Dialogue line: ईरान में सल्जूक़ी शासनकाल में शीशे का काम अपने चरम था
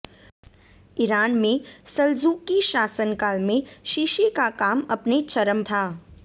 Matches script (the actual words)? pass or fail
pass